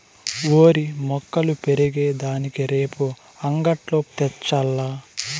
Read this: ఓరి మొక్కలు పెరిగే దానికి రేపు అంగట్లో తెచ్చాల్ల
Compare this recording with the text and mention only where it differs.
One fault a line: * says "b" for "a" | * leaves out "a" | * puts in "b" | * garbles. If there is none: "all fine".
all fine